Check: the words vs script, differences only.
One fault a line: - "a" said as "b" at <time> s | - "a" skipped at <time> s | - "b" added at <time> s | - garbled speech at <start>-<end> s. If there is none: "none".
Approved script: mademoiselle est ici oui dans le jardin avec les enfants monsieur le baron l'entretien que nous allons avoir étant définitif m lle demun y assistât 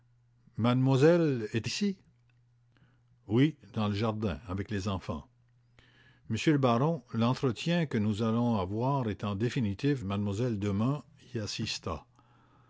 none